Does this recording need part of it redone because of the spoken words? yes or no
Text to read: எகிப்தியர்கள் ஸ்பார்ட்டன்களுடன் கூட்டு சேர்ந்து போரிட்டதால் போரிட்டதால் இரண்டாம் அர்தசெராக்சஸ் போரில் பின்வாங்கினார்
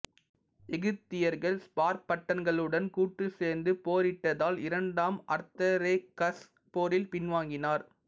yes